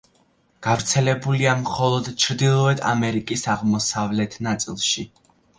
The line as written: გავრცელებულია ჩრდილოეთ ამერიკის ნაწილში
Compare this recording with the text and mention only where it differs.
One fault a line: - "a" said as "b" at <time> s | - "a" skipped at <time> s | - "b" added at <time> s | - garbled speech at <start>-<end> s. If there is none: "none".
- "მხოლოდ" added at 1.6 s
- "აღმოსავლეთ" added at 3.5 s